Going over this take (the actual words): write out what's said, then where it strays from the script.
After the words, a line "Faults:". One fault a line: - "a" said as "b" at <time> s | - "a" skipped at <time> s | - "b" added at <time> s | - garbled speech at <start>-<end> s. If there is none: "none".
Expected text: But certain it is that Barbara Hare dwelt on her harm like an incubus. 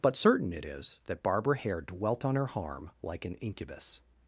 But certain it is that Barbara Hare dwelt on her harm like an incubus.
Faults:
none